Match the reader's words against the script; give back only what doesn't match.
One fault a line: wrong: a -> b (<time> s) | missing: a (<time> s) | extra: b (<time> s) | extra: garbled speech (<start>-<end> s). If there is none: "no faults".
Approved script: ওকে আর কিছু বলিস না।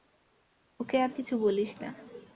no faults